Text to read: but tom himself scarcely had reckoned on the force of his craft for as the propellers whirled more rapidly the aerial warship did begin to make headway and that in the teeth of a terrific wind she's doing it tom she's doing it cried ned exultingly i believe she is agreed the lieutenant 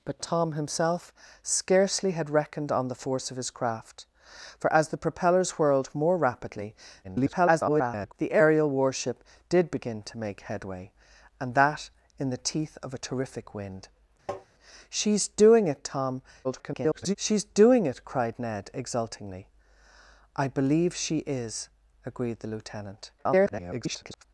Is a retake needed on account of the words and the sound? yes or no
yes